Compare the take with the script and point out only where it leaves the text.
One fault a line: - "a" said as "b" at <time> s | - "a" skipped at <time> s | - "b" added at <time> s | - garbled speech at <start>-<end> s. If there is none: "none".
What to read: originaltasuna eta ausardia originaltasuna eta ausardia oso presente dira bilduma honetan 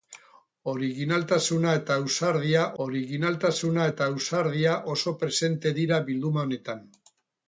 none